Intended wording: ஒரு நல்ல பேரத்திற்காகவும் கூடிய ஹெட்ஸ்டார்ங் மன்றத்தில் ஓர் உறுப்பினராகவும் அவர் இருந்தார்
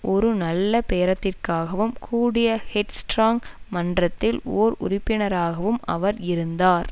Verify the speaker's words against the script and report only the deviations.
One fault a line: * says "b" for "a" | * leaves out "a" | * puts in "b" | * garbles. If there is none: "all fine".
all fine